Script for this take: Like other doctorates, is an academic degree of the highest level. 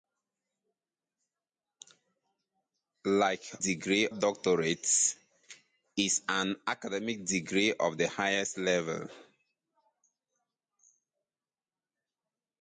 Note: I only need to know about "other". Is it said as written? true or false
false